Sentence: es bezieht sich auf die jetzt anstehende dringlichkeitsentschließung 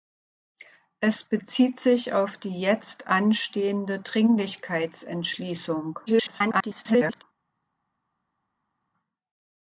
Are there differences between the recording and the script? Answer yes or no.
yes